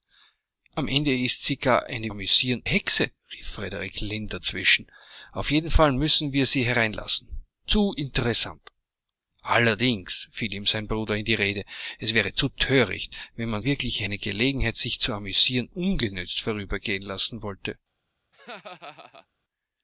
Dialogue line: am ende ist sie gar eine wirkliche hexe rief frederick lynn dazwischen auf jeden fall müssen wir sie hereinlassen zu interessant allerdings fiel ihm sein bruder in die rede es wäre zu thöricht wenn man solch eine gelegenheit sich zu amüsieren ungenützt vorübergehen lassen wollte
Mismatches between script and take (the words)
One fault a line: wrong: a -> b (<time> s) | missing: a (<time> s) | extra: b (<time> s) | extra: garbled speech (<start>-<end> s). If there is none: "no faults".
wrong: wirkliche -> amüsieren (2.1 s)
wrong: solch -> wirkliche (13.6 s)